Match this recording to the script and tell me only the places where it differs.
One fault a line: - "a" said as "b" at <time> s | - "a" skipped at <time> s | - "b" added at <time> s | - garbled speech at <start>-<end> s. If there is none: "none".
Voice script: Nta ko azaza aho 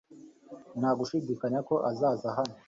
- "gushidikanya" added at 1.0 s
- "aho" said as "hano" at 2.4 s